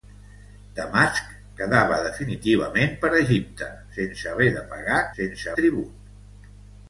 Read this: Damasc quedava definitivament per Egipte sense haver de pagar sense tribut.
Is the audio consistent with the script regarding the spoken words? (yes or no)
yes